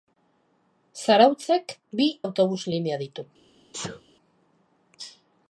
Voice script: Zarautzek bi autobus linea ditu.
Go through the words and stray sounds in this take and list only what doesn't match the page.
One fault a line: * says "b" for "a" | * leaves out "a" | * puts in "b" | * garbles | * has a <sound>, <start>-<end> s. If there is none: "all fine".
* has a sneeze, 3.7-4.0 s